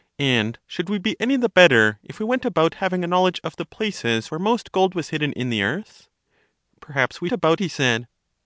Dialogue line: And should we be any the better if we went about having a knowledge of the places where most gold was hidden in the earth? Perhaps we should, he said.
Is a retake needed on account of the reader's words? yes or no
yes